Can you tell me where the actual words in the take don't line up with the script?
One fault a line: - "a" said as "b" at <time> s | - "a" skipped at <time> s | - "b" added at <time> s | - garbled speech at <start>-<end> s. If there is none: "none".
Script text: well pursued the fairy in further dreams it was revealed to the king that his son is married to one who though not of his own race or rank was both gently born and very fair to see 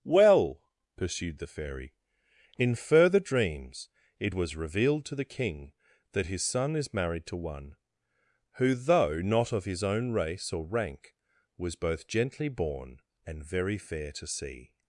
none